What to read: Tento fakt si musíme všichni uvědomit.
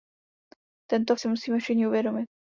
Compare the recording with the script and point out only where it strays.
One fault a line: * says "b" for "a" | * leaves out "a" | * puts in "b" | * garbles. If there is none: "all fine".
* leaves out "fakt"